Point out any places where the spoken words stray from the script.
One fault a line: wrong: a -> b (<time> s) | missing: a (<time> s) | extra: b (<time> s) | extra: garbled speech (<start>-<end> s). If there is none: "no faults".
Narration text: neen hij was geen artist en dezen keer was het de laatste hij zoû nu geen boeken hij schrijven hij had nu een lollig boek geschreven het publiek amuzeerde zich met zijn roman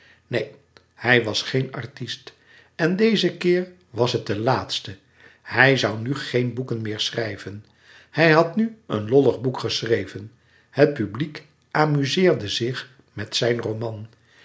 wrong: hij -> meer (6.8 s)